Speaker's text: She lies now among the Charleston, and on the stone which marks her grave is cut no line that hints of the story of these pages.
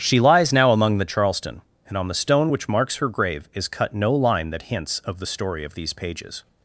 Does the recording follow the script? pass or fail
pass